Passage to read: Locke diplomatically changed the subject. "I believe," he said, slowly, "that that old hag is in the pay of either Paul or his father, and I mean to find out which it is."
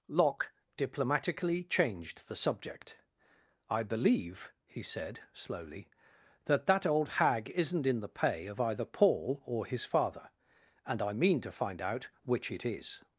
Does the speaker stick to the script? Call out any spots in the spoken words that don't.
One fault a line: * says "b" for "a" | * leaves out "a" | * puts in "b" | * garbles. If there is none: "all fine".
* says "isn't" for "is"